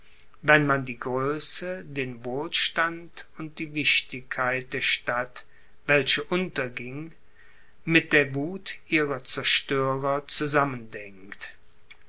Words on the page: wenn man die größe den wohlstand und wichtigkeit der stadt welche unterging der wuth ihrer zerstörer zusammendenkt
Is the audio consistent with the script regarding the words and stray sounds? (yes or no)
no